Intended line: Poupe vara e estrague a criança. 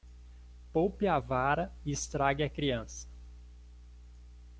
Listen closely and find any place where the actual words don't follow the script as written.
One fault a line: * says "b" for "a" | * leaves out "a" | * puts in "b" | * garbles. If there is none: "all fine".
* puts in "a"